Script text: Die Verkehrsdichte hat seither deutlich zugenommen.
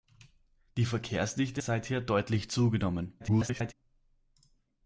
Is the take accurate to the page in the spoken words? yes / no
no